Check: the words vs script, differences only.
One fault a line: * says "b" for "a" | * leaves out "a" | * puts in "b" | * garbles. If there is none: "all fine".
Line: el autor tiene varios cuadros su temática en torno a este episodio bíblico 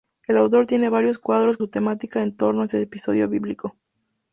all fine